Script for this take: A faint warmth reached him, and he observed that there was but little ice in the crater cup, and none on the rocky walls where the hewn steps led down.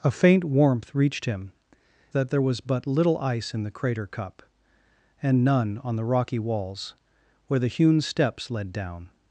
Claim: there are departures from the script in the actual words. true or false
true